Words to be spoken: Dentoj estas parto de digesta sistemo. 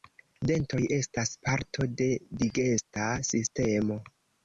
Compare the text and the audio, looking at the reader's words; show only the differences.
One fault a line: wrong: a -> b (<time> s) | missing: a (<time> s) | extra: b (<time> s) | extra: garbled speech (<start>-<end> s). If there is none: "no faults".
no faults